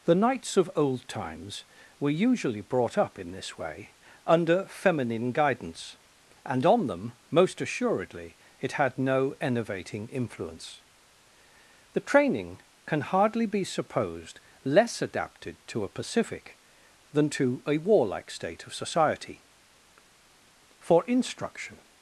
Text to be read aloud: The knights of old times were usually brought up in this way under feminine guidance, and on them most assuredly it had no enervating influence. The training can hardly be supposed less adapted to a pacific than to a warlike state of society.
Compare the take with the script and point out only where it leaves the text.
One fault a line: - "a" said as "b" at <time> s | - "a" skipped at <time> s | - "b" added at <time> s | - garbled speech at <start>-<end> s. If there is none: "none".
- "For instruction" added at 20.8 s